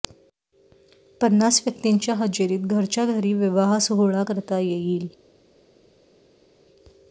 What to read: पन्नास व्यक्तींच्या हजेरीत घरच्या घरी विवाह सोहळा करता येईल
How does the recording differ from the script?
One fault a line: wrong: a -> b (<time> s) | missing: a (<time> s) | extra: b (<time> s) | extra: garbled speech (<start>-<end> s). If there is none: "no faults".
no faults